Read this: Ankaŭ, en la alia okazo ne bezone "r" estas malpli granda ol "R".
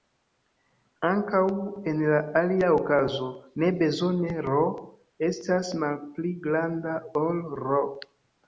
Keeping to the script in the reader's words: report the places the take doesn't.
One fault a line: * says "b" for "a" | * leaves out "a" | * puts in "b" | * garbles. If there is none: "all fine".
all fine